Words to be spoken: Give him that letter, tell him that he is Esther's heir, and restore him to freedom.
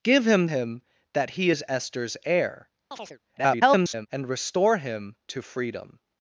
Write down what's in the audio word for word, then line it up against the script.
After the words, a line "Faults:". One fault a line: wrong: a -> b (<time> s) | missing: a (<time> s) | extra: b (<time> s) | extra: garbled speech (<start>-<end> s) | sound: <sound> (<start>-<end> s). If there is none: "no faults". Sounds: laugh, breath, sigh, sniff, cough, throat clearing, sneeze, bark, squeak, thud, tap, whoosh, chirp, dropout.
Give him him that he is Esther's heir, [garbled] and restore him to freedom.
Faults:
missing: that letter tell (0.5 s)
sound: chirp (2.9-3.2 s)
extra: garbled speech (3.4-4.1 s)